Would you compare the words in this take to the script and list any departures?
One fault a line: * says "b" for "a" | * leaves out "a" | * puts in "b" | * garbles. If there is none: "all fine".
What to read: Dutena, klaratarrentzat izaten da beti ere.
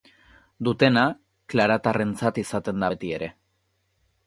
all fine